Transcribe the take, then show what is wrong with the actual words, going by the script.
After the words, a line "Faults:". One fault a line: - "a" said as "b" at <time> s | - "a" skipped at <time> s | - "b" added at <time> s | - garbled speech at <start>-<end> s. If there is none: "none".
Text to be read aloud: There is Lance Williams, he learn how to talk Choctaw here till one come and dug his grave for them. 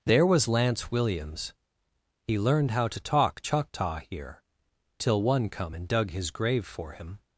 There was Lance Williams, he learned how to talk Choctaw here till one come and dug his grave for him.
Faults:
- "is" said as "was" at 0.2 s
- "learn" said as "learned" at 2.4 s
- "them" said as "him" at 6.9 s